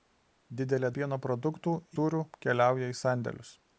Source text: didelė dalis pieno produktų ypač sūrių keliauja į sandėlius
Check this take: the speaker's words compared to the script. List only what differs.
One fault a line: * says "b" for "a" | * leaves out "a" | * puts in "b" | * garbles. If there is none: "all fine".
* leaves out "dalis"
* leaves out "ypač"